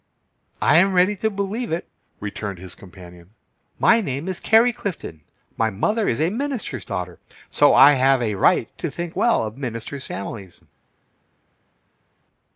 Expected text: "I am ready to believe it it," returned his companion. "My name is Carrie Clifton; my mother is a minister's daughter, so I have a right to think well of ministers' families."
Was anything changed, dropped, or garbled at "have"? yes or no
no